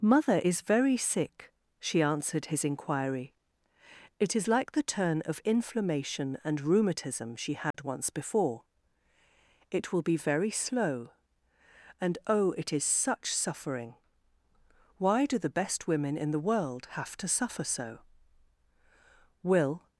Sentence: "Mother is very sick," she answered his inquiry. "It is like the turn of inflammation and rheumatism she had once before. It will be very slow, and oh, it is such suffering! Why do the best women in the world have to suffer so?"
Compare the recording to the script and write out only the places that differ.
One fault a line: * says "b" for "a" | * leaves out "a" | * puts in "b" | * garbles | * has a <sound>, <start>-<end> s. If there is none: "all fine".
* has a dropout, 7.7-7.7 s
* puts in "Will"